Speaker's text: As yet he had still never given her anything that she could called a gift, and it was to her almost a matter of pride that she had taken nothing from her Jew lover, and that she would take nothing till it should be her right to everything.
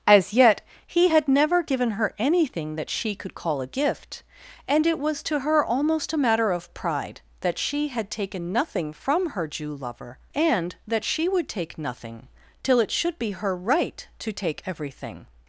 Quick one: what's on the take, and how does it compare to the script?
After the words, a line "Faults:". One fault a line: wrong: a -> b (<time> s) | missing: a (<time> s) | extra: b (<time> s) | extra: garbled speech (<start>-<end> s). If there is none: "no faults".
As yet he had never given her anything that she could call a gift, and it was to her almost a matter of pride that she had taken nothing from her Jew lover, and that she would take nothing till it should be her right to take everything.
Faults:
missing: still (1.3 s)
wrong: called -> call (3.3 s)
extra: take (14.3 s)